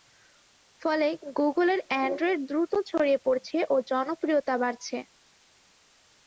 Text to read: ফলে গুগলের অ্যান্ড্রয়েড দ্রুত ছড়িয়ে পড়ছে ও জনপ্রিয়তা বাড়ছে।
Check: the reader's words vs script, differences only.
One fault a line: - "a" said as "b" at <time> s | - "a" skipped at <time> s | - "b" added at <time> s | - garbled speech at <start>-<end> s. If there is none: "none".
none